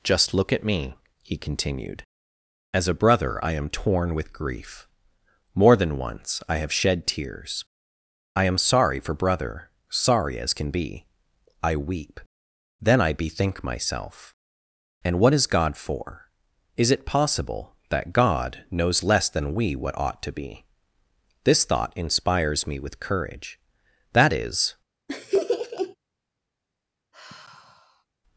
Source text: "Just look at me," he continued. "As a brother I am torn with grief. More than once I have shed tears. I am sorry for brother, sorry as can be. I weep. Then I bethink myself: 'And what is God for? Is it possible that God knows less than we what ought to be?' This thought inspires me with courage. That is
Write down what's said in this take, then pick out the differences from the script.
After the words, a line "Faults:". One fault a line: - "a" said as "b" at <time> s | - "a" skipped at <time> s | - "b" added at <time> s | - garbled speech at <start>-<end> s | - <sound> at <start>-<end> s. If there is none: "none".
"Just look at me," he continued. "As a brother I am torn with grief. More than once I have shed tears. I am sorry for brother, sorry as can be. I weep. Then I bethink myself: 'And what is God for? Is it possible that God knows less than we what ought to be?' This thought inspires me with courage. That is
Faults:
- laugh at 25.1-26.0 s
- sigh at 27.1-28.1 s